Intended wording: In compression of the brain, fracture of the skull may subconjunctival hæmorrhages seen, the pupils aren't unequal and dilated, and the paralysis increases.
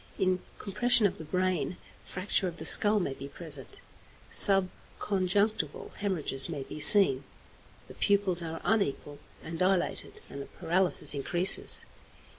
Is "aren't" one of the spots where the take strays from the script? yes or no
yes